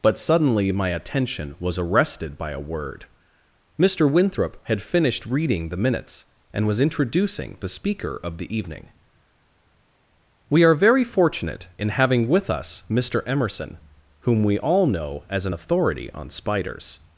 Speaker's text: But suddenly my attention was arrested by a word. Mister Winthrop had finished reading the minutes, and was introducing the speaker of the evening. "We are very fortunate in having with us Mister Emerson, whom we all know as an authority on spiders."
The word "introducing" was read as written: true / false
true